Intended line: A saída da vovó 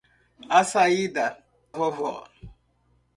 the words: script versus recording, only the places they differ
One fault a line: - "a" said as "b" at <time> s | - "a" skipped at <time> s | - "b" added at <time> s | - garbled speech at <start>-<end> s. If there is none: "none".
- "da" skipped at 1.3 s